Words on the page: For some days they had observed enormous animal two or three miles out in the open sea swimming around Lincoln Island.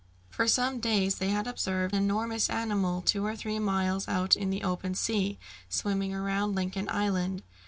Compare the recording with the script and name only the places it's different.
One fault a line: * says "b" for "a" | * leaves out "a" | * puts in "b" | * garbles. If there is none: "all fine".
all fine